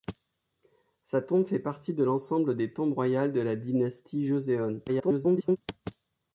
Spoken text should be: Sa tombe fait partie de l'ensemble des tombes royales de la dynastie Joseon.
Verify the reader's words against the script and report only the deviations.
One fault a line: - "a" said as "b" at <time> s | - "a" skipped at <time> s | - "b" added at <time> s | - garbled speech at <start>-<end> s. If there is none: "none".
- garbled speech at 4.9-5.6 s